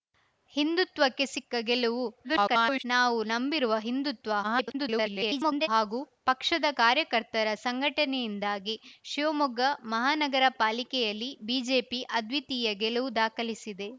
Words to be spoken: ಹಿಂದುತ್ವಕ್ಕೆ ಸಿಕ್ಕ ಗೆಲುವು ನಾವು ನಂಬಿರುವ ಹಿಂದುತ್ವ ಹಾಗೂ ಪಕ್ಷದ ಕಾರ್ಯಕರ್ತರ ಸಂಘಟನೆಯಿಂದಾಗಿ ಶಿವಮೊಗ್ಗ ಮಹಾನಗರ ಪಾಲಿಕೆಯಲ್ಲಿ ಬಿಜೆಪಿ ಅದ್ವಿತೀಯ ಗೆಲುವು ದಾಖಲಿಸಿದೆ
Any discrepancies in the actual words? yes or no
yes